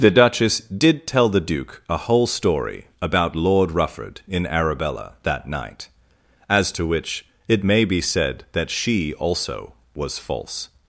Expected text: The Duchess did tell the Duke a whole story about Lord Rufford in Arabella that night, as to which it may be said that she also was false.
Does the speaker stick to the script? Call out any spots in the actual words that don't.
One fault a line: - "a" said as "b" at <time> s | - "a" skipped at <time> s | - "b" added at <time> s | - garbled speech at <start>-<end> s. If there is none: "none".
none